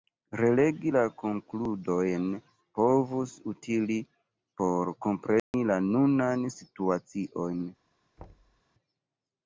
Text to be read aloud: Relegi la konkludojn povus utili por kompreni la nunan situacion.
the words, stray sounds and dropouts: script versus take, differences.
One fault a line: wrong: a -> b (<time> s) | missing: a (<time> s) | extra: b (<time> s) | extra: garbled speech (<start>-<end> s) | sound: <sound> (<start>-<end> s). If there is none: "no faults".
sound: dropout (5.4-5.5 s)
sound: thud (8.2-8.6 s)